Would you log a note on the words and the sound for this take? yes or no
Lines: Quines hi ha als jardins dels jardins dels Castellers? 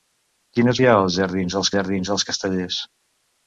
no